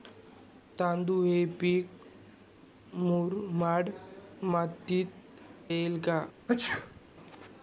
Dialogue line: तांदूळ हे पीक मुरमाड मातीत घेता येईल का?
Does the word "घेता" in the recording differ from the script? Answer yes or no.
yes